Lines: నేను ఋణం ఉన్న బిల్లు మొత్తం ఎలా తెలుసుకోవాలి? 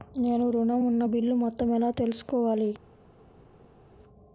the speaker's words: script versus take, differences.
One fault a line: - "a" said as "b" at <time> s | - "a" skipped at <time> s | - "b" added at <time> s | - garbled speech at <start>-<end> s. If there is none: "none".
none